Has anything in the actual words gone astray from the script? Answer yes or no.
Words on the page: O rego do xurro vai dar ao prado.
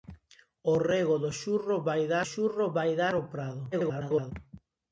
yes